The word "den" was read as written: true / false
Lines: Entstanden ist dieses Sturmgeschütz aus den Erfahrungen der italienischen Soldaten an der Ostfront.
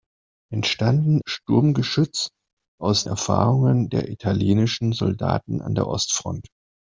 false